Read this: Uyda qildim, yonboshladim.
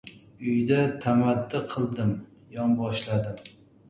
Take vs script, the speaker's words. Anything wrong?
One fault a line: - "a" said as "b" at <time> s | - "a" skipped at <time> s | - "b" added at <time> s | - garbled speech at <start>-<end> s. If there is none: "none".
- "tamaddi" added at 1.0 s